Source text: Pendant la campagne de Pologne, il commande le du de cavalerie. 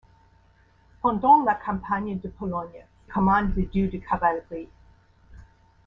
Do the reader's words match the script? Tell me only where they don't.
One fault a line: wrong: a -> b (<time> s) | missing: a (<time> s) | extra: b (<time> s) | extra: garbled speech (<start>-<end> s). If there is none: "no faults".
missing: il (2.9 s)